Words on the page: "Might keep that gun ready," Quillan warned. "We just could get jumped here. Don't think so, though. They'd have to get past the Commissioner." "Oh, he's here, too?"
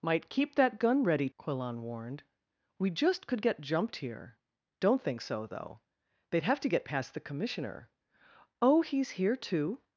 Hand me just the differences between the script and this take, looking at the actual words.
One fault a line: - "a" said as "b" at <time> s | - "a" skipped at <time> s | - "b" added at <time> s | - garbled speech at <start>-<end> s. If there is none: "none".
none